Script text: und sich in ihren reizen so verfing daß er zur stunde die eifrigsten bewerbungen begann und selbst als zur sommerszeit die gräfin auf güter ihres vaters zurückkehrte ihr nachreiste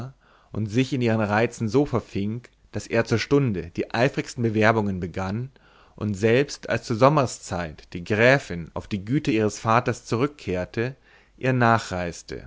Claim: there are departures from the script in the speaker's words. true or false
true